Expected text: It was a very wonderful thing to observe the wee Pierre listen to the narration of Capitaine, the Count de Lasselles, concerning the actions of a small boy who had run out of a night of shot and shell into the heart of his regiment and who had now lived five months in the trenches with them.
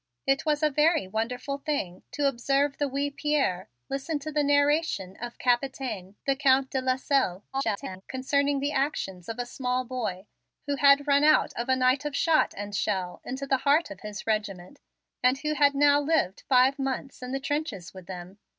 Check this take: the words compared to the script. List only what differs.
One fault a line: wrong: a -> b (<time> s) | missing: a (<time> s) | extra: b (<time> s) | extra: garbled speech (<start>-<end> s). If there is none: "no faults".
extra: garbled speech (7.5-8.0 s)